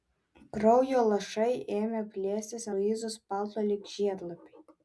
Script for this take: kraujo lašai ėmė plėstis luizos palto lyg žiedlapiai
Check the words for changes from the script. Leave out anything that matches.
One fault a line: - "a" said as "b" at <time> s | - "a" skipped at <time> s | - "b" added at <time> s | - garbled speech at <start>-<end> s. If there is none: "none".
none